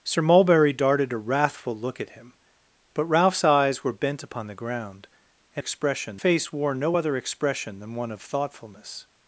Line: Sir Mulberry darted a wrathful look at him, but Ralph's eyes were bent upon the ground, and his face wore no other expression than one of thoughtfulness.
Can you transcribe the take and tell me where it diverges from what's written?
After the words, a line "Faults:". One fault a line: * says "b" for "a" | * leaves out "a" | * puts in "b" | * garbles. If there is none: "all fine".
Sir Mulberry darted a wrathful look at him, but Ralph's eyes were bent upon the ground, and expression face wore no other expression than one of thoughtfulness.
Faults:
* says "expression" for "his"